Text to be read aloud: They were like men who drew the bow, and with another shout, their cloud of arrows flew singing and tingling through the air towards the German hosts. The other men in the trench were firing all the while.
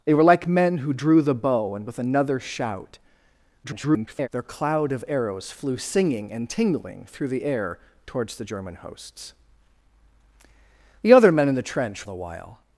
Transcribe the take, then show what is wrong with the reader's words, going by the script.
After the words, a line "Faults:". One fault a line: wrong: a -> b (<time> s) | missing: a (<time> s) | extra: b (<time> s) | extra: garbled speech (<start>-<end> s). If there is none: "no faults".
They were like men who drew the bow, and with another shout, [garbled] their cloud of arrows flew singing and tingling through the air towards the German hosts. The other men in the trench the while.
Faults:
extra: garbled speech (3.6-4.3 s)
missing: were firing all (12.1 s)